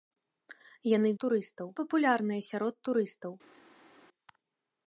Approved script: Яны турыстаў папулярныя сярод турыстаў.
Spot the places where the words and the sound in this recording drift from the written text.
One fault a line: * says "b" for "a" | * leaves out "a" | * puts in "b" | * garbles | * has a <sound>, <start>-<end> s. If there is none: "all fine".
all fine